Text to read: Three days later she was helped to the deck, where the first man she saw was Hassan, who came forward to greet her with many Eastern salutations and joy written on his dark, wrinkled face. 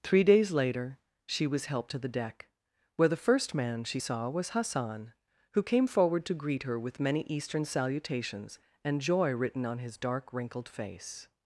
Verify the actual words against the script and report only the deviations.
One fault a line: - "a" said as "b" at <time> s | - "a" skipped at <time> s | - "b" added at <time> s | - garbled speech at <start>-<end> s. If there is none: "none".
none